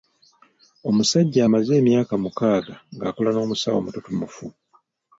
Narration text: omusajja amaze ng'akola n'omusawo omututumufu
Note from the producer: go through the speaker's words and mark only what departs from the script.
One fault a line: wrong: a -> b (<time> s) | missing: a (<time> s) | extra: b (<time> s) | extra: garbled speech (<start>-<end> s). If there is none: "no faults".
extra: emyaka mukaaga (1.8 s)